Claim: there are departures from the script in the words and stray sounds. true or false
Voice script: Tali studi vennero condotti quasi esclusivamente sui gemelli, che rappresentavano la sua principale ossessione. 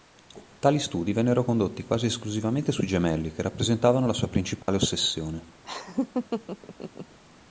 true